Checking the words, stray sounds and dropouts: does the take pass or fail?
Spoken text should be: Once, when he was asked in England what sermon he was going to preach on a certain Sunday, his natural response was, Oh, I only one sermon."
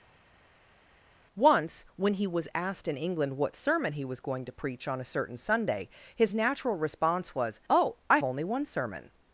pass